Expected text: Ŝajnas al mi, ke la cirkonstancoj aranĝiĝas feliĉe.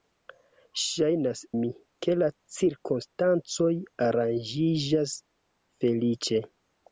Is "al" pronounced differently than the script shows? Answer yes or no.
yes